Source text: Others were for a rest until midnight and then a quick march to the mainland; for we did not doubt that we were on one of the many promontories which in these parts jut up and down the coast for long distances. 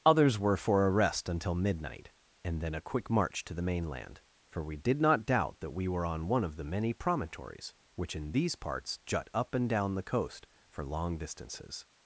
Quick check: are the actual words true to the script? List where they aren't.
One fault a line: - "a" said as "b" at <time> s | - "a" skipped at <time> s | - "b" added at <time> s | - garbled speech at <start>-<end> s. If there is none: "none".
none